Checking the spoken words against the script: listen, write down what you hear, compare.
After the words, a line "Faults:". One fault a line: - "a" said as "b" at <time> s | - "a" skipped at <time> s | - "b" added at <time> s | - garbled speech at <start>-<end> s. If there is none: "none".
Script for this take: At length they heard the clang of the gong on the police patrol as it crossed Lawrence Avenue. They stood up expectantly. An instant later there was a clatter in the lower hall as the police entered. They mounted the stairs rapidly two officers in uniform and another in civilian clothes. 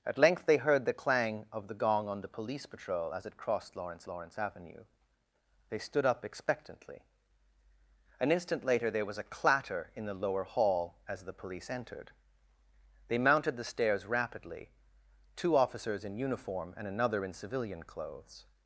At length they heard the clang of the gong on the police patrol as it crossed Lawrence Lawrence Avenue. They stood up expectantly. An instant later there was a clatter in the lower hall as the police entered. They mounted the stairs rapidly two officers in uniform and another in civilian clothes.
Faults:
- "Lawrence" added at 4.1 s